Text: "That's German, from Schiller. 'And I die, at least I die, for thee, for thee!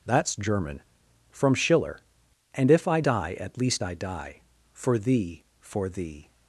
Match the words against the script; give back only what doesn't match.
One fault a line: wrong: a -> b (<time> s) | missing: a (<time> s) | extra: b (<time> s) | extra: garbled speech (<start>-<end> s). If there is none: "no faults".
extra: if (2.7 s)